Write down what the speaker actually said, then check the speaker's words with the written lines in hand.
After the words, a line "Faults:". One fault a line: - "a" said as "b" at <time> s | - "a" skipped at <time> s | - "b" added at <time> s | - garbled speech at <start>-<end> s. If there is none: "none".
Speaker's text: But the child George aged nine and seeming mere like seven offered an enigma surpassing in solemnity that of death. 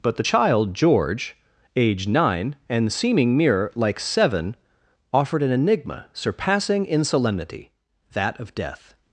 But the child George aged nine and seeming mere like seven offered an enigma surpassing in solemnity that of death.
Faults:
none